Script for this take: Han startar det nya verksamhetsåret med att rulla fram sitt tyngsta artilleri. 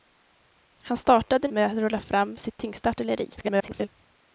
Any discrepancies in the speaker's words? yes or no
yes